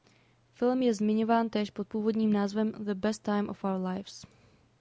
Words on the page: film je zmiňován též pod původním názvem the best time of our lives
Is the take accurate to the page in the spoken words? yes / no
yes